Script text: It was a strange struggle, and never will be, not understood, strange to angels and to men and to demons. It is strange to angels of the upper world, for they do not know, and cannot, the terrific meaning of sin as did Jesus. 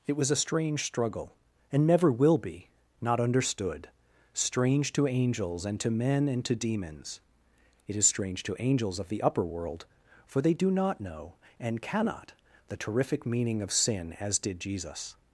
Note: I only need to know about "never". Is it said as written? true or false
true